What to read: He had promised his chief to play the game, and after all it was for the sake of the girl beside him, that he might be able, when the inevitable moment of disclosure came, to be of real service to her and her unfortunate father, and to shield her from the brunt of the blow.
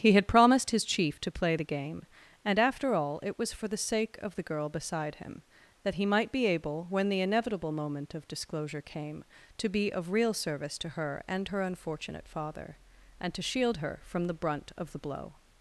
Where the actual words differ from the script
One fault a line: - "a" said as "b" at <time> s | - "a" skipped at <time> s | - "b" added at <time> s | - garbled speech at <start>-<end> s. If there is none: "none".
none